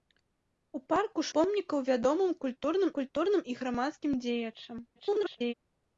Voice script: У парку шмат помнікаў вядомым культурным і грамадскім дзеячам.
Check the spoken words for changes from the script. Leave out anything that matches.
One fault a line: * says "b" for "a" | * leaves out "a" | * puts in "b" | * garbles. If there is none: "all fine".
* leaves out "шмат"
* puts in "культурным"
* garbles